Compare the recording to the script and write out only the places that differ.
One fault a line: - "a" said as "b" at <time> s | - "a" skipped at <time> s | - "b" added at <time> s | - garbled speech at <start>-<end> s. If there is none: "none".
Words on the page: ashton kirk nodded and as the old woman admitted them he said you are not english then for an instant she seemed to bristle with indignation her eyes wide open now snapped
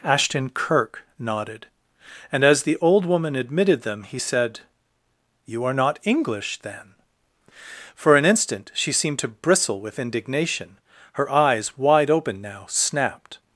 none